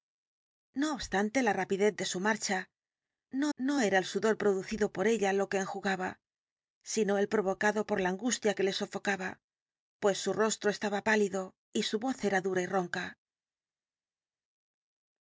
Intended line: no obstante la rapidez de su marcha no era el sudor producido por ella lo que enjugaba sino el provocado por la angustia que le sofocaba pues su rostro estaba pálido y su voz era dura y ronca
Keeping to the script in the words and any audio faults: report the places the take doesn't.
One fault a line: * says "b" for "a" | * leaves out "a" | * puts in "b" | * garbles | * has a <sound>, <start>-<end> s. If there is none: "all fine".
* puts in "no"